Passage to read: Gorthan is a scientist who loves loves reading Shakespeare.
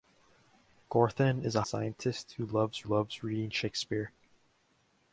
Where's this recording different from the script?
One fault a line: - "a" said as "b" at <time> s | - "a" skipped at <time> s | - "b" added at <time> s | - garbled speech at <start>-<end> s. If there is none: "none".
none